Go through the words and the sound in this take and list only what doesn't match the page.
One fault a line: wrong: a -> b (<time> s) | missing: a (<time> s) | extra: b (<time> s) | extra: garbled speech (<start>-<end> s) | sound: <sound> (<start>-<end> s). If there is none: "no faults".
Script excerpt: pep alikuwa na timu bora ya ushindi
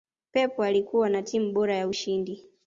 no faults